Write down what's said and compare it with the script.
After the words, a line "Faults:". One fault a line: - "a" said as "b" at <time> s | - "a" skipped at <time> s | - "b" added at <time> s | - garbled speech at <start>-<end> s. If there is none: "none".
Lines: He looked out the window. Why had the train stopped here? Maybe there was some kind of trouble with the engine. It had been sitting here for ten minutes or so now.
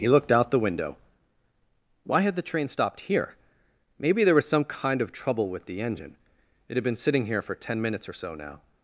He looked out the window. Why had the train stopped here? Maybe there was some kind of trouble with the engine. It had been sitting here for ten minutes or so now.
Faults:
none